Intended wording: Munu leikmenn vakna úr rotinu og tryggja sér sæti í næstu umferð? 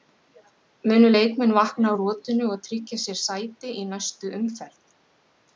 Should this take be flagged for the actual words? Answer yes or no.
no